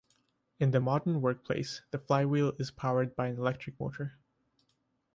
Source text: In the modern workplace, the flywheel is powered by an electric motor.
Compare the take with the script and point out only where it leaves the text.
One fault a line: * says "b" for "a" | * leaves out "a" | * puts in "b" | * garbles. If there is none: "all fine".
all fine